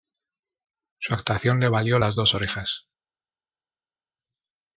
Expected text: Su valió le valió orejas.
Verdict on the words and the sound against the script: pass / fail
fail